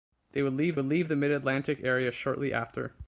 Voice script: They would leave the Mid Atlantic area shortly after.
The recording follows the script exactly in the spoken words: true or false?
false